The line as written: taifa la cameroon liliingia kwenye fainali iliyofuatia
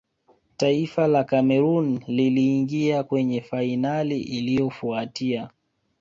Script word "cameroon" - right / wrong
right